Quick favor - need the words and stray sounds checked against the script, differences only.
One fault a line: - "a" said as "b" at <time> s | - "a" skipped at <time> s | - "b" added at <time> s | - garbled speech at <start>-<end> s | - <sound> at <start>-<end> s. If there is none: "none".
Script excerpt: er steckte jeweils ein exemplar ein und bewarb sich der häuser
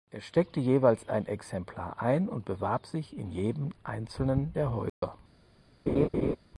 - "in jedem einzelnen" added at 3.2 s
- dropout at 4.9-5.0 s
- laugh at 5.9-6.4 s